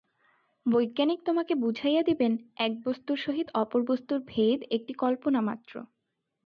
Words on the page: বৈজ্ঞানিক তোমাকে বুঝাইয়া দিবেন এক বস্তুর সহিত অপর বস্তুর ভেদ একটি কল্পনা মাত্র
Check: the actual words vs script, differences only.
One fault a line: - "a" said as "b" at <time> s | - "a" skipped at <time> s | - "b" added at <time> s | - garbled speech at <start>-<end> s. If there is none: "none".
none